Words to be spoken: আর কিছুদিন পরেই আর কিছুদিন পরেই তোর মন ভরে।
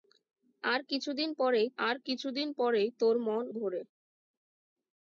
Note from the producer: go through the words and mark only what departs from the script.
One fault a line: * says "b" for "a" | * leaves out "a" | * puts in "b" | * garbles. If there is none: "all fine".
all fine